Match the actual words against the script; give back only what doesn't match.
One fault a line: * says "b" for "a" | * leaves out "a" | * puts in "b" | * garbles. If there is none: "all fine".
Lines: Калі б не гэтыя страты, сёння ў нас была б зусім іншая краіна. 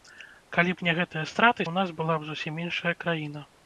* leaves out "сёння"